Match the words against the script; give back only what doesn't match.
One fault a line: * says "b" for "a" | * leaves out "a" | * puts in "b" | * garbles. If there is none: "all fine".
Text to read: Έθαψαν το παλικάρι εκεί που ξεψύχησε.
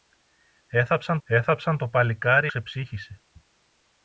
* puts in "έθαψαν"
* leaves out "εκεί που"